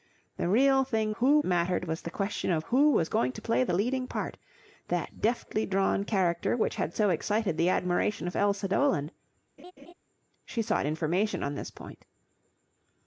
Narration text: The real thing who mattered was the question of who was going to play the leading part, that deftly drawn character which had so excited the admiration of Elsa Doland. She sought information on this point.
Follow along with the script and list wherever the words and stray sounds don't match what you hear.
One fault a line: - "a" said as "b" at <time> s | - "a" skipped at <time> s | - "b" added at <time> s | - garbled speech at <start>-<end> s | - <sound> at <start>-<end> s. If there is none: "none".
- laugh at 9.6-9.9 s